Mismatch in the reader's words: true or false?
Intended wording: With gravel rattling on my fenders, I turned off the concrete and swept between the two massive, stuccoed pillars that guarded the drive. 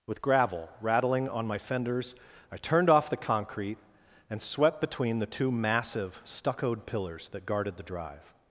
false